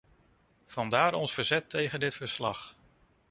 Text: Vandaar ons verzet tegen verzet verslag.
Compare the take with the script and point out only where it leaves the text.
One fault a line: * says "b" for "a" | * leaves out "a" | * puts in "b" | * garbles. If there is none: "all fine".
* says "dit" for "verzet"